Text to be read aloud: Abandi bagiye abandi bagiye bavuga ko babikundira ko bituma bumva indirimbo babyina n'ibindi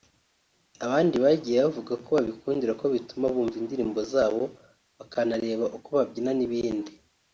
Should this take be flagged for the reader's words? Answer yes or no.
yes